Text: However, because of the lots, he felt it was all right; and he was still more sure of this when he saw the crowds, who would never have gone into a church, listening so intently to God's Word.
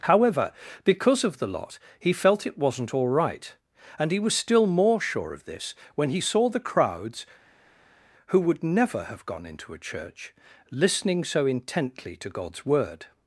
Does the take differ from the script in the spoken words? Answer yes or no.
yes